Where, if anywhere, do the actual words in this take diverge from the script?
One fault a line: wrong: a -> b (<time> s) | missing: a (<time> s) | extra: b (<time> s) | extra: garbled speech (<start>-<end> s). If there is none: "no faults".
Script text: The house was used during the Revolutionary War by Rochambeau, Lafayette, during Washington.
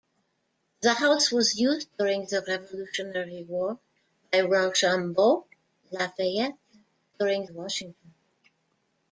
no faults